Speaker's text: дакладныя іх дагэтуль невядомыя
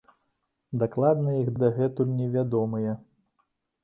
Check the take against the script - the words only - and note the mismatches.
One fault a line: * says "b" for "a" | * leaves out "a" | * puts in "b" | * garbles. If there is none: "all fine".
all fine